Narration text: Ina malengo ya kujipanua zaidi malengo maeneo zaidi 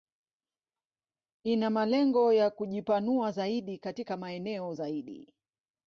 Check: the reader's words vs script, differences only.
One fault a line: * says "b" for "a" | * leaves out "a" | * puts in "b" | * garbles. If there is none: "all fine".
* says "katika" for "malengo"